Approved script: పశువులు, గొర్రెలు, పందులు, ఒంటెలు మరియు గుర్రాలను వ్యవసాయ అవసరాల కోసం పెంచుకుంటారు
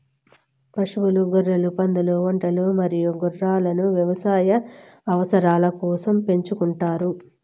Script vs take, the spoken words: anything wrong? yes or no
no